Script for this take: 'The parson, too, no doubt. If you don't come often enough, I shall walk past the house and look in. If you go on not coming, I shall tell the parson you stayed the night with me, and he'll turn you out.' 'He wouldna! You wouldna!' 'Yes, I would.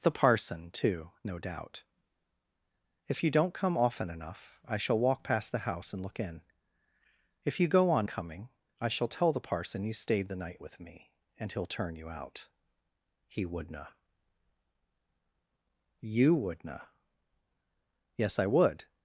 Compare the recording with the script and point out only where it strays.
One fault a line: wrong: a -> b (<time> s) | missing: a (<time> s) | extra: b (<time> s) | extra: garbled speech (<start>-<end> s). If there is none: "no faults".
missing: not (8.1 s)